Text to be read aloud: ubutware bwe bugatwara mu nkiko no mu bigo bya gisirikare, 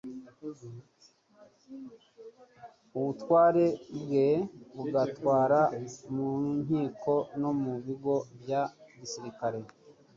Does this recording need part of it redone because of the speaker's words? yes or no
no